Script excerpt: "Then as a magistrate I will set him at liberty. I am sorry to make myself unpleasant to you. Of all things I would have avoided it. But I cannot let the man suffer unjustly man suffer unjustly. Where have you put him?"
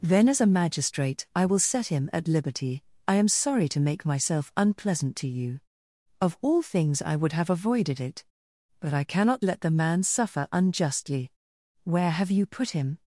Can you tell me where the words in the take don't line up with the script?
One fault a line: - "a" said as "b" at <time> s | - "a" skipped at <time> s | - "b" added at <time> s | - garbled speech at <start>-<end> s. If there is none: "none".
- "man suffer unjustly" skipped at 11.3 s